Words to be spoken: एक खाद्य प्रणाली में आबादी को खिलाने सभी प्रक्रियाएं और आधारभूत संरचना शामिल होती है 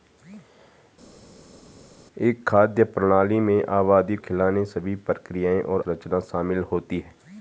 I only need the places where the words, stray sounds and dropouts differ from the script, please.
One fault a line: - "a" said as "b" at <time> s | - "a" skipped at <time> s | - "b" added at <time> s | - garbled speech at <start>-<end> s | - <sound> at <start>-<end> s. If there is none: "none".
- "को" skipped at 4.2 s
- "आधारभूत" skipped at 5.8 s